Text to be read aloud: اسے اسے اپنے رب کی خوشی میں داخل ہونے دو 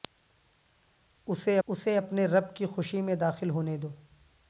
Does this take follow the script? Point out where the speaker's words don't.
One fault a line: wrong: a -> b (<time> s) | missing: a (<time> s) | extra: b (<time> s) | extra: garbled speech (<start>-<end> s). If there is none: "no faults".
no faults